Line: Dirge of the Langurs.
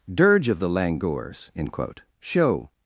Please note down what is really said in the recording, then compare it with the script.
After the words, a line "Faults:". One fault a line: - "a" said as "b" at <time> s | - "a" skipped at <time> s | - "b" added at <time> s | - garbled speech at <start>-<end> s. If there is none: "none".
Dirge of the Langurs. end quote show
Faults:
- "end quote show" added at 1.6 s